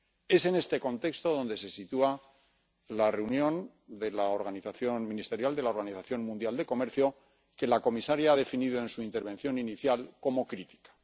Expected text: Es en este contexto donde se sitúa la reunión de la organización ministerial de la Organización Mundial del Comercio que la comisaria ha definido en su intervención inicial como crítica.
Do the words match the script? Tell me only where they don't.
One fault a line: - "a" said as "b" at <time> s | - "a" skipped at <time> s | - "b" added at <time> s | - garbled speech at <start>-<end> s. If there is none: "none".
none